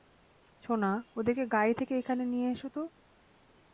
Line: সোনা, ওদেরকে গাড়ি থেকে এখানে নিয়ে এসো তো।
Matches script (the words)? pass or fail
pass